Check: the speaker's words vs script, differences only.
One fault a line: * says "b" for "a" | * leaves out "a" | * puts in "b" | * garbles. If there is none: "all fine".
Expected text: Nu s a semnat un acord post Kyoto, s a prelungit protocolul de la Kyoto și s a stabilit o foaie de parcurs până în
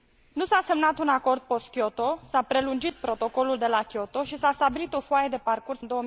* leaves out "până"